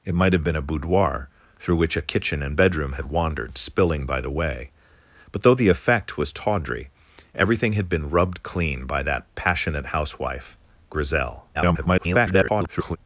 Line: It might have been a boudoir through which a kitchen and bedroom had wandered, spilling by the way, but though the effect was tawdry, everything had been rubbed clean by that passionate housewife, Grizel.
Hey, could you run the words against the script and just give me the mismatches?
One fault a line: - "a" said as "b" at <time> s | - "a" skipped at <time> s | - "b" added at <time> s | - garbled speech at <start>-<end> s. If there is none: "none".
- garbled speech at 11.5-13.0 s